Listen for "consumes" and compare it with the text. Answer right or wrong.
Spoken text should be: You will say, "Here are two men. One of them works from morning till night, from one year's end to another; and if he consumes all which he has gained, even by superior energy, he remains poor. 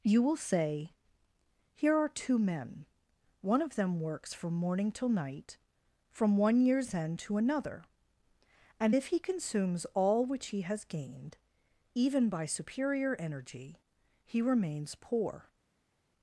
right